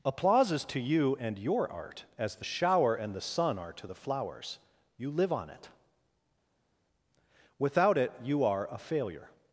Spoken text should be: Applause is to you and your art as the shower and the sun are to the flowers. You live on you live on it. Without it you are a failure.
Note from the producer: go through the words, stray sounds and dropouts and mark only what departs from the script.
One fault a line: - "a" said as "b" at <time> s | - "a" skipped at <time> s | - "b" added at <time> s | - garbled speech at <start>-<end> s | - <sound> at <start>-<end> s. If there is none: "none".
- "you live on" skipped at 5.5 s